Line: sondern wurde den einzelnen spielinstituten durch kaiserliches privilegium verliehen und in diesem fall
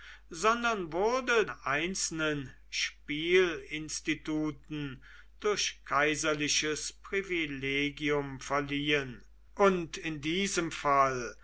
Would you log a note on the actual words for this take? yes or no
yes